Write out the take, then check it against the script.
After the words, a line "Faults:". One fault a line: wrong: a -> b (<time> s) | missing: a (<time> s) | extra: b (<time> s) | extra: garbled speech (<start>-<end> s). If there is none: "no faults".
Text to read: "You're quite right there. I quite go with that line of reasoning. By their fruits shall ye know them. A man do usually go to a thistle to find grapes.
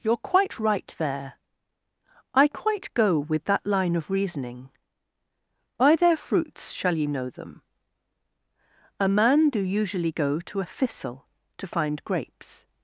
"You're quite right there. I quite go with that line of reasoning. By their fruits shall ye know them. A man do usually go to a thistle to find grapes.
Faults:
no faults